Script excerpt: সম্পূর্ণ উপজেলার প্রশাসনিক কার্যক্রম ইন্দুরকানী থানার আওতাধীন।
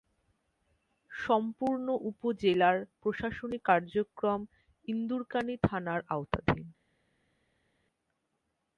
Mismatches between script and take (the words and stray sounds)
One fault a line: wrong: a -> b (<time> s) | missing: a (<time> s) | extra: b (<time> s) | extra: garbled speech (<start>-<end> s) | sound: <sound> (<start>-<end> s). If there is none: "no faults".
no faults